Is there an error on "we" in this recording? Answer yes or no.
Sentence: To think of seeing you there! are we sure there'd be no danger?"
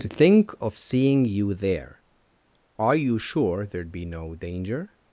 yes